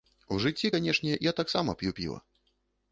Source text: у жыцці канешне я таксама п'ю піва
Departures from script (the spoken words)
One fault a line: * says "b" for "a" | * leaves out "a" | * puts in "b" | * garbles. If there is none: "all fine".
all fine